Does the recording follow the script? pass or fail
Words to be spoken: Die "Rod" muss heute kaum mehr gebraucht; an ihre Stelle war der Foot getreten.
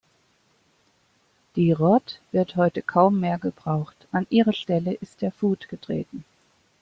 fail